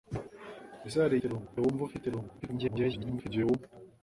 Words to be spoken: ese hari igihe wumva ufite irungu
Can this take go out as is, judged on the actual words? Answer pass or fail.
fail